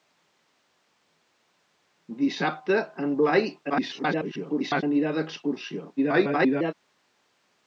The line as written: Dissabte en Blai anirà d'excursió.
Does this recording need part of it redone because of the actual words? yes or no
yes